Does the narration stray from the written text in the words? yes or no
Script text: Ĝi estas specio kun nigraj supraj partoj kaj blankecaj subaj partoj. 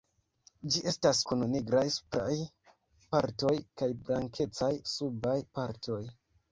yes